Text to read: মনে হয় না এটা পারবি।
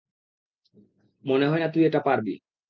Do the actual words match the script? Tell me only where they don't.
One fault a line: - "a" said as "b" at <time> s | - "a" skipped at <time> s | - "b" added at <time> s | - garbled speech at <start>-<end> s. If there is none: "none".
- "তুই" added at 1.7 s